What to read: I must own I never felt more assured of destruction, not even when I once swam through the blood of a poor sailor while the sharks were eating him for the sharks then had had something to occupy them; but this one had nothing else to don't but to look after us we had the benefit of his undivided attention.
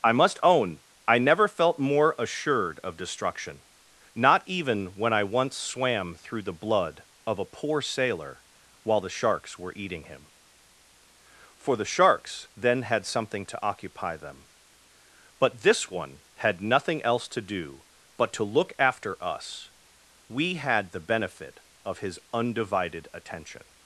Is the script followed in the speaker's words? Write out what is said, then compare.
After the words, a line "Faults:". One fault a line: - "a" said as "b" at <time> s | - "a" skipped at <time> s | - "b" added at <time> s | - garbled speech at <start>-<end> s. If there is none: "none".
I must own I never felt more assured of destruction, not even when I once swam through the blood of a poor sailor while the sharks were eating him for the sharks then had something to occupy them; but this one had nothing else to do but to look after us we had the benefit of his undivided attention.
Faults:
- "had" skipped at 13.1 s
- "don't" said as "do" at 17.4 s